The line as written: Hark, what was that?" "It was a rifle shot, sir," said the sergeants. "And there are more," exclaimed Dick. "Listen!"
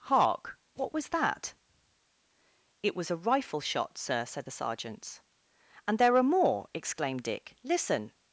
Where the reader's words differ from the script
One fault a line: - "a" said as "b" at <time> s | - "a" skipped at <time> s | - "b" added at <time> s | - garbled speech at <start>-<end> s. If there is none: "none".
none